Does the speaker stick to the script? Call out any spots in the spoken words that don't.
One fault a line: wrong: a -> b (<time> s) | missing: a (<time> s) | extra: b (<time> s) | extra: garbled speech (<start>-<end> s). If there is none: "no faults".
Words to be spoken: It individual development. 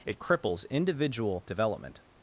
extra: cripples (0.2 s)